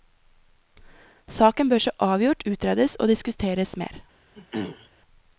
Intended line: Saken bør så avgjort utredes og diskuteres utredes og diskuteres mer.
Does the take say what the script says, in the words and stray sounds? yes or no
no